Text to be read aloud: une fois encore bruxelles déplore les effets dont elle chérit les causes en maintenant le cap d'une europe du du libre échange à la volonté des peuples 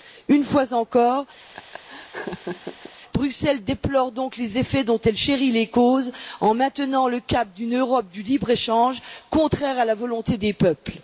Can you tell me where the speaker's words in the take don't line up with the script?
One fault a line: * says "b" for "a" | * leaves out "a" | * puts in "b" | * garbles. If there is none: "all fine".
* puts in "donc"
* leaves out "du"
* puts in "contraire"